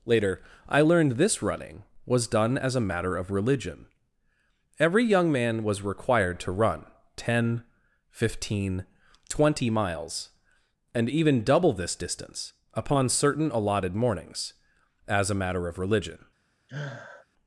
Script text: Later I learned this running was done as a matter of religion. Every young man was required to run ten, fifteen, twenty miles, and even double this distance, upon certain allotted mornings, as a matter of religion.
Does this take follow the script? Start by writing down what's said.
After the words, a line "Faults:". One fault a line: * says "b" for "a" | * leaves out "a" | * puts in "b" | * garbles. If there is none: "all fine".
Later I learned this running was done as a matter of religion. Every young man was required to run ten, fifteen, twenty miles, and even double this distance, upon certain allotted mornings, as a matter of religion.
Faults:
all fine